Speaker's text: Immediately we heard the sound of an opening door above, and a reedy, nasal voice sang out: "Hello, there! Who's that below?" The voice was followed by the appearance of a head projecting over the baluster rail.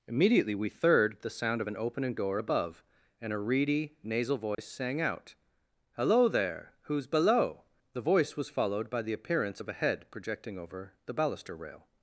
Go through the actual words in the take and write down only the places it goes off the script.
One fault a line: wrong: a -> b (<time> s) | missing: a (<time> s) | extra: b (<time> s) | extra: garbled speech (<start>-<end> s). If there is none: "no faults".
wrong: heard -> third (0.7 s)
missing: that (7.1 s)